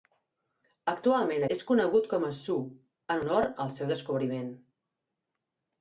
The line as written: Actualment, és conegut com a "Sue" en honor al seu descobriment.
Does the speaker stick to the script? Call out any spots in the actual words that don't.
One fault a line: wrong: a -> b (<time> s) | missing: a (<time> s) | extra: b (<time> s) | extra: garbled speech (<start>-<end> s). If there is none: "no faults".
no faults